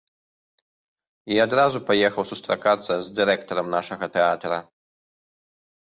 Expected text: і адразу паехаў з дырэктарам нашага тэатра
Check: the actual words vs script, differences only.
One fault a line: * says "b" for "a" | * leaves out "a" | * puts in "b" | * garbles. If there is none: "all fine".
* puts in "сустракацца"